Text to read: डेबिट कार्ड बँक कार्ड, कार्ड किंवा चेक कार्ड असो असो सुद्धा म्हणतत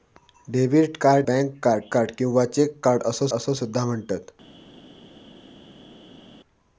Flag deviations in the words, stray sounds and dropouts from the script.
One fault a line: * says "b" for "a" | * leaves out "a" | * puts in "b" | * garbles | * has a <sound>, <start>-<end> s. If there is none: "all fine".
all fine